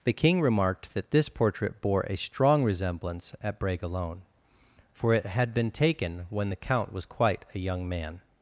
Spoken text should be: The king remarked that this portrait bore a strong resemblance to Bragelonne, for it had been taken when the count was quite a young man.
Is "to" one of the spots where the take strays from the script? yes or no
yes